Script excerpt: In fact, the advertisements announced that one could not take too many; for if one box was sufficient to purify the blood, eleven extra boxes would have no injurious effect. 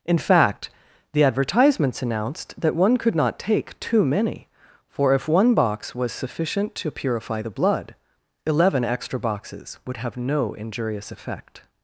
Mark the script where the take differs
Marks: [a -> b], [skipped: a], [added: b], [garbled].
In fact, the advertisements announced that one could not take too many; for if one box was sufficient to purify the blood, eleven extra boxes would have no injurious effect.